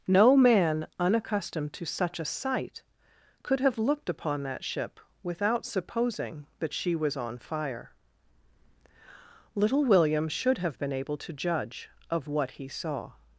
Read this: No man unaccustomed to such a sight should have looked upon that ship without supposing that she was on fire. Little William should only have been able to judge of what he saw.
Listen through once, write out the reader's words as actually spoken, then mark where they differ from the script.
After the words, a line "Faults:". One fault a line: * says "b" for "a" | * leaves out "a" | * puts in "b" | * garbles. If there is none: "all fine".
No man unaccustomed to such a sight could have looked upon that ship without supposing that she was on fire. Little William should have been able to judge of what he saw.
Faults:
* says "could" for "should"
* leaves out "only"